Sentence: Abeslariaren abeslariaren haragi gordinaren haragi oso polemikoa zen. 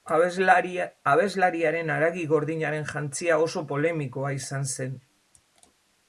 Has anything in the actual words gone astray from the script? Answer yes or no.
yes